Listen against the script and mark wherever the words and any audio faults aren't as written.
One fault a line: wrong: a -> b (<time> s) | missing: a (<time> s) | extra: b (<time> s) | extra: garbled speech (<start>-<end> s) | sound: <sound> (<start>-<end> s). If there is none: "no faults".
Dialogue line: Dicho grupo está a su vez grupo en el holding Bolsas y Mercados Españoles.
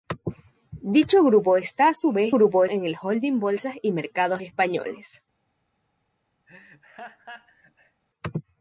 sound: laugh (6.5-8.0 s)